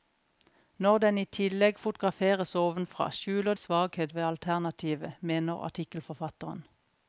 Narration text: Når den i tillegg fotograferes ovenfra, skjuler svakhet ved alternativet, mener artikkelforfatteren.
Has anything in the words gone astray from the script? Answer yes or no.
no